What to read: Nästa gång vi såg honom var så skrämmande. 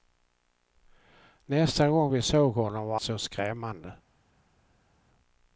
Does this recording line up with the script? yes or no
yes